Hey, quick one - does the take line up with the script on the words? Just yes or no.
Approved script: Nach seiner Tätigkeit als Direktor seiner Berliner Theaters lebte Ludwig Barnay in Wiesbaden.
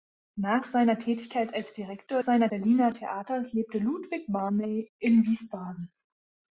yes